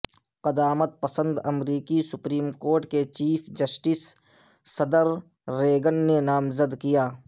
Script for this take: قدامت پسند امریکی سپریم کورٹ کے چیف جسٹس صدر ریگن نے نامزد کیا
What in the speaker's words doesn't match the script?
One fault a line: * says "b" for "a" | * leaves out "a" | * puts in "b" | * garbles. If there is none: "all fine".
all fine